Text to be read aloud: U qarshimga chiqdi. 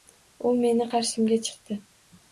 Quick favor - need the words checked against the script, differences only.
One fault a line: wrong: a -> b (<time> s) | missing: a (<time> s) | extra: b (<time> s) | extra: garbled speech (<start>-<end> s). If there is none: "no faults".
extra: meni (0.6 s)